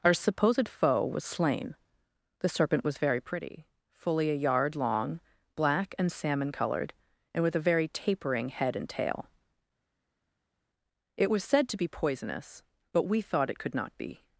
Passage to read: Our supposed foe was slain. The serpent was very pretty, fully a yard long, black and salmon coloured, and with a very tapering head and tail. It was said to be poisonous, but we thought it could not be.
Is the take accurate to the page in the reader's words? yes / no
yes